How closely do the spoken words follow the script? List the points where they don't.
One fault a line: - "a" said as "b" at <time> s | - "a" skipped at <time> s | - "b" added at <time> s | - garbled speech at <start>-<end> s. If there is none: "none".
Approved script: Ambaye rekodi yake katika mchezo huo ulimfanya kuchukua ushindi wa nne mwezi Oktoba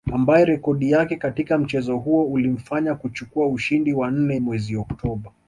none